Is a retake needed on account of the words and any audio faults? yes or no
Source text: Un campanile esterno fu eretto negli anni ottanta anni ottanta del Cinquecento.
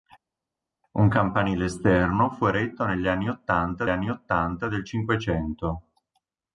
no